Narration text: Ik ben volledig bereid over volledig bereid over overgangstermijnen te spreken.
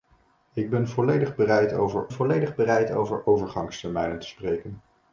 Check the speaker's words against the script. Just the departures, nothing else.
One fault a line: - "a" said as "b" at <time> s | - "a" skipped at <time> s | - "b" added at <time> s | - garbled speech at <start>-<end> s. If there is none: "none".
none